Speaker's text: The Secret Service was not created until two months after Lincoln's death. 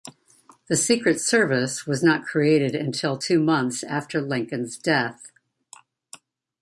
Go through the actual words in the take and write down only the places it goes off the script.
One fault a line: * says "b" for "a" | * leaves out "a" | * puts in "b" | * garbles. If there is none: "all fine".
all fine